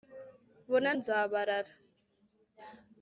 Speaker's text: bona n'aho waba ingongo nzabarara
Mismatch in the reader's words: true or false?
true